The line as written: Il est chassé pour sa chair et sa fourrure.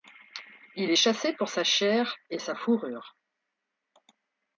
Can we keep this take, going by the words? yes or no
yes